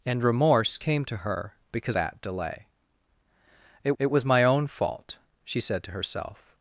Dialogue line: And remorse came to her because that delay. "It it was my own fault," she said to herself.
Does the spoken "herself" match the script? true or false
true